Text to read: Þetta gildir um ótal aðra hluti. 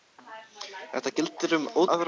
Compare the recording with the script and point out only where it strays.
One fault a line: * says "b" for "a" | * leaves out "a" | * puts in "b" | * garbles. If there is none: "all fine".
* leaves out "aðra"